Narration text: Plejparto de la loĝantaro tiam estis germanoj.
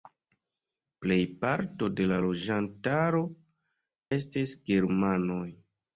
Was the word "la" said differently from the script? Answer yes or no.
no